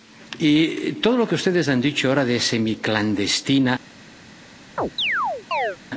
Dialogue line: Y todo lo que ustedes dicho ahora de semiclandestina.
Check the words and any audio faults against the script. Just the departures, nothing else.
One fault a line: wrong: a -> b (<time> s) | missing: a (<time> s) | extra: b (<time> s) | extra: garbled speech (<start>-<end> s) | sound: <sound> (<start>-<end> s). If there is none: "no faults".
extra: han (1.7 s)
sound: chirp (4.8-5.8 s)